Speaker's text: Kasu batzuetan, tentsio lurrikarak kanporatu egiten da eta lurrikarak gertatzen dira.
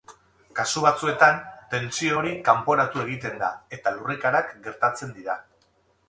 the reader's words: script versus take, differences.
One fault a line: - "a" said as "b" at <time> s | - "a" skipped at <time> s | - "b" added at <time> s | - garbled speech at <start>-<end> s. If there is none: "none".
- "lurrikarak" said as "hori" at 2.2 s